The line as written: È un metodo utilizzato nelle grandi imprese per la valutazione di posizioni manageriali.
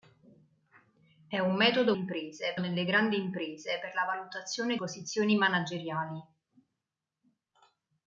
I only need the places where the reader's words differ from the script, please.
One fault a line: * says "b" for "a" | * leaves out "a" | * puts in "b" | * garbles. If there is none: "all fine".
* says "imprese" for "utilizzato"
* leaves out "di"